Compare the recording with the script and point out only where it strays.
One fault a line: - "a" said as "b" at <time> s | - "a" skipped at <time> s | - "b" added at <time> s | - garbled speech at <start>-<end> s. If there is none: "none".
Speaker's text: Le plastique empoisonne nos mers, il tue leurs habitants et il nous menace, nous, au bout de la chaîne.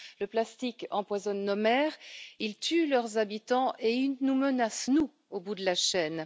none